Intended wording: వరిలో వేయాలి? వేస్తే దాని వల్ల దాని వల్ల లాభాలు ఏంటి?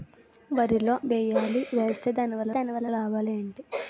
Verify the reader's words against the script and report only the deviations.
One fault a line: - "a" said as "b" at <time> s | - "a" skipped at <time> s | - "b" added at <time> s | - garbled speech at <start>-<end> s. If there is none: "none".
none